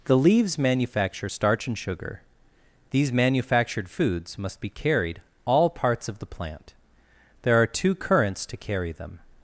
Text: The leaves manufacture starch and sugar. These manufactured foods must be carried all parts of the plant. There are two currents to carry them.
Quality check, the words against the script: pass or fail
pass